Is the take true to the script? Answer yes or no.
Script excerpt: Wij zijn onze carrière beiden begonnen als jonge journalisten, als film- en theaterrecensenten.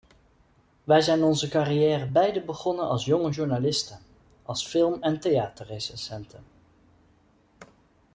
yes